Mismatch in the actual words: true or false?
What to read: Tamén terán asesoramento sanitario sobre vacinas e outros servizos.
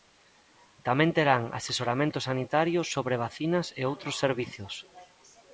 false